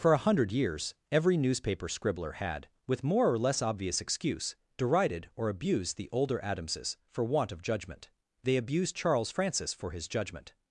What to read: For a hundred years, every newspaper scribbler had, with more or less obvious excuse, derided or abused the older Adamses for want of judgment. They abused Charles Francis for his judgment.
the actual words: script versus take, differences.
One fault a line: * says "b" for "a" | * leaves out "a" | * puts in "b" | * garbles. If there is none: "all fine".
all fine